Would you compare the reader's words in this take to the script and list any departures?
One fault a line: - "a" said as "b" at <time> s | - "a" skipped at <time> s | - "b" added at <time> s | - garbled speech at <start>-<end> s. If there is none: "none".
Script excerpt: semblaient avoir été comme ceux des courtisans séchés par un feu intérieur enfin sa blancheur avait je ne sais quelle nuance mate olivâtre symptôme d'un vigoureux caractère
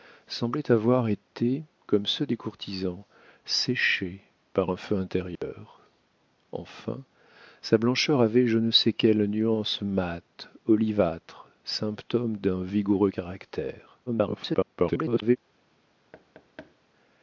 - garbled speech at 14.1-15.4 s